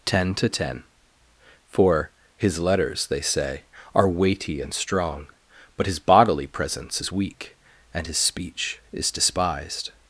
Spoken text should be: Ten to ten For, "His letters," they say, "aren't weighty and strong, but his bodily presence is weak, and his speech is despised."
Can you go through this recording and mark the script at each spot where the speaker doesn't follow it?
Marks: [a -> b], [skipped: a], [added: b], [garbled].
Ten to ten For, "His letters," they say, ["aren't -> are] weighty and strong, but his bodily presence is weak, and his speech is despised."